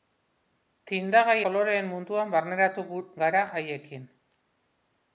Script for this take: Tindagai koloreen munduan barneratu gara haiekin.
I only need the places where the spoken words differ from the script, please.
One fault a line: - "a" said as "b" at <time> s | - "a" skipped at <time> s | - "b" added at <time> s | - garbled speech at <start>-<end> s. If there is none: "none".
none